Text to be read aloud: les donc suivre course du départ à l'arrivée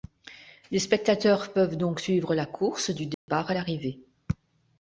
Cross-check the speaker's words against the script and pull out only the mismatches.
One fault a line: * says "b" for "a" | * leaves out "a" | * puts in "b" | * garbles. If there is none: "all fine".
* puts in "spectateurs peuvent"
* puts in "la"